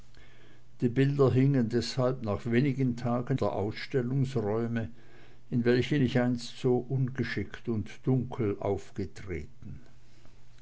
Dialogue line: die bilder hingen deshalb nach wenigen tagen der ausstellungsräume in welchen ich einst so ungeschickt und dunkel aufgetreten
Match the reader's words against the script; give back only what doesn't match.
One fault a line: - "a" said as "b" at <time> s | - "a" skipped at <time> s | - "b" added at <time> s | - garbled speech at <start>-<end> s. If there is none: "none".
none